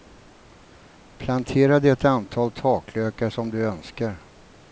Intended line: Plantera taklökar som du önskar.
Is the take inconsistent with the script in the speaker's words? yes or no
yes